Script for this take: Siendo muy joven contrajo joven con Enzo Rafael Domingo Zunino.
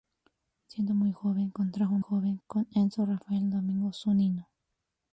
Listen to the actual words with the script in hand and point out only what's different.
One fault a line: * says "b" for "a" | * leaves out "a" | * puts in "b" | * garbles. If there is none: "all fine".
all fine